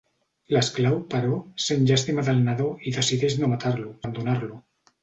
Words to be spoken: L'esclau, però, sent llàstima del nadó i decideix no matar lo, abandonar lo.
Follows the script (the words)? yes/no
yes